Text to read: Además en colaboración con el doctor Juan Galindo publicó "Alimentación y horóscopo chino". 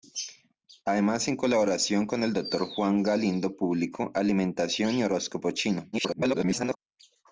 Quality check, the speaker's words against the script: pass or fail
fail